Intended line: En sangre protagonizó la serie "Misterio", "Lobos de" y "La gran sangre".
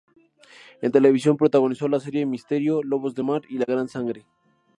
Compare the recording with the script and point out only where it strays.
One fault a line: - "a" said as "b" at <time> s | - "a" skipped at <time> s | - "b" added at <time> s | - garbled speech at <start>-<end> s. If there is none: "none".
- "sangre" said as "televisión" at 0.9 s
- "mar" added at 3.2 s